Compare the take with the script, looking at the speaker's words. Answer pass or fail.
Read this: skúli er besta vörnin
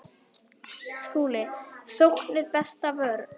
fail